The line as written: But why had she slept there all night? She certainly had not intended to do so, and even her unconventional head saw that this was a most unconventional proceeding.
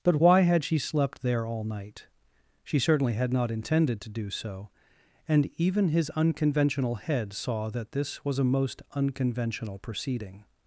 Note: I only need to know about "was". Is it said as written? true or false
true